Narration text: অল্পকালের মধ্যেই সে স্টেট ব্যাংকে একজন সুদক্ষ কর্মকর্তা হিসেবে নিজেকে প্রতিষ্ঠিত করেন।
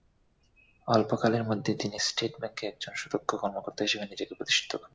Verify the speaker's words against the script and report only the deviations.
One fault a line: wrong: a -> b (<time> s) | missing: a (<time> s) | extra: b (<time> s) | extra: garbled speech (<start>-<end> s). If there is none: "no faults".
wrong: সে -> তিনি (1.8 s)